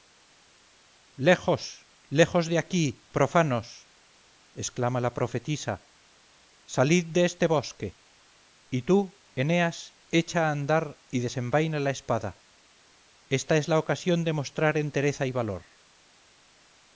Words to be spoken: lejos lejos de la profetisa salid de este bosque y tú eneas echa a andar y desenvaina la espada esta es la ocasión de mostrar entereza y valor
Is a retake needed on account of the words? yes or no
yes